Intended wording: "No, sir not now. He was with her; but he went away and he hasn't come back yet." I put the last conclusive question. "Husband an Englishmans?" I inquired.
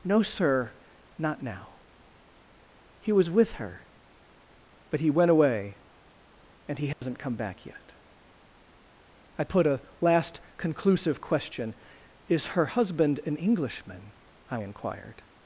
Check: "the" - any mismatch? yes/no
yes